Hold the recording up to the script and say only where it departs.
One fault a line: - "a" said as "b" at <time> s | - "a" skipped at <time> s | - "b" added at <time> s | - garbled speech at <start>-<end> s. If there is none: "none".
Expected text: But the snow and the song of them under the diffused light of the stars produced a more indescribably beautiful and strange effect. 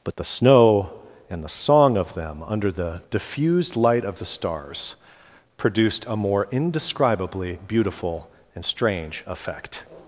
none